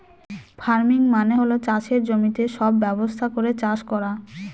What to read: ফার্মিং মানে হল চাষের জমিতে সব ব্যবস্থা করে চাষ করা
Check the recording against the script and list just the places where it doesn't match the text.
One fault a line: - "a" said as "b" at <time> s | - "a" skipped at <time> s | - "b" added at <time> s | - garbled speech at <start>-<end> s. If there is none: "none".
none